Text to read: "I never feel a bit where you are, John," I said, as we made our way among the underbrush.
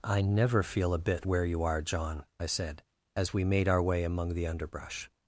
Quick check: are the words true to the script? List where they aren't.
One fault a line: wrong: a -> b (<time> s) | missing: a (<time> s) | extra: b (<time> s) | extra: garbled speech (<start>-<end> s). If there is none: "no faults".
no faults